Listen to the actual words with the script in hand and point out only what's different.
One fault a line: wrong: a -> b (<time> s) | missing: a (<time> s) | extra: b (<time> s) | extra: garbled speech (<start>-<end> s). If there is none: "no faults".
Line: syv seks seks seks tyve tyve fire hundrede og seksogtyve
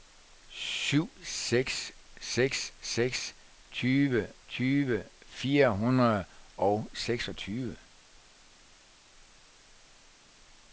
no faults